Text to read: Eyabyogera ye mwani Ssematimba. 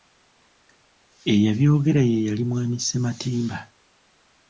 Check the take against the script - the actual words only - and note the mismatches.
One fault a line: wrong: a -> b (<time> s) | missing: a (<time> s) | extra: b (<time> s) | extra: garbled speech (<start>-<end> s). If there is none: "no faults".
extra: yali (2.3 s)